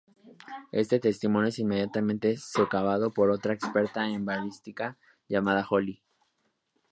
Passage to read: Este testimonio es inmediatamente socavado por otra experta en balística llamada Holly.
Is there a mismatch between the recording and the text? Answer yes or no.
no